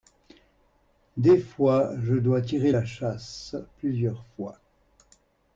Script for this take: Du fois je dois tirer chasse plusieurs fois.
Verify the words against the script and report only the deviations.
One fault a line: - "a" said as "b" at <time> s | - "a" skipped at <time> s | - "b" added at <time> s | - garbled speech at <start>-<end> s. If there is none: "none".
- "Du" said as "Des" at 1.1 s
- "la" added at 2.7 s